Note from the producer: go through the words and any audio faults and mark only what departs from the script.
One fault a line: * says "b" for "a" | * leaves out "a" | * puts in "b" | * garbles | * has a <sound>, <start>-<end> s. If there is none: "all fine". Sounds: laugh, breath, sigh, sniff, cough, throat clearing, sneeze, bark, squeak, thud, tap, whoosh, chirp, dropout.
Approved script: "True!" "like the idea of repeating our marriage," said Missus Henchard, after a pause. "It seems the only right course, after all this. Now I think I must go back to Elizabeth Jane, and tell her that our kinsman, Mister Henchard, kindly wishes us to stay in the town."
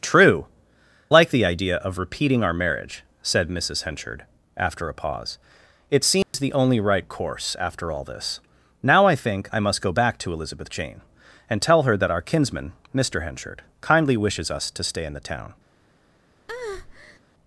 * has a dropout, 6.2-6.3 s
* has a breath, 16.5-17.2 s